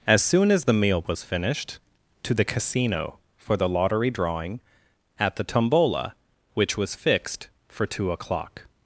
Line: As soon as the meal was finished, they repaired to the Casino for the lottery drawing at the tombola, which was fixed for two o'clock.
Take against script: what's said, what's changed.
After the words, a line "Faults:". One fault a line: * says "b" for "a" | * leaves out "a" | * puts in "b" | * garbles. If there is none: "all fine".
As soon as the meal was finished, to the Casino for the lottery drawing at the tombola, which was fixed for two o'clock.
Faults:
* leaves out "they repaired"